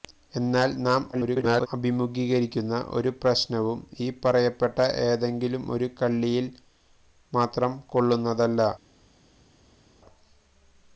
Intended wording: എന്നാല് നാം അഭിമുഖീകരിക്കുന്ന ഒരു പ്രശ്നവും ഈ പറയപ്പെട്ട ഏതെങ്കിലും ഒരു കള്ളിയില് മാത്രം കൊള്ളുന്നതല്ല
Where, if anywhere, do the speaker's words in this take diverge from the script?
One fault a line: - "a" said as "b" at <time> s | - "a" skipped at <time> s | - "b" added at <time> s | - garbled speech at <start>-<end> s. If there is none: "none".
- garbled speech at 1.1-1.7 s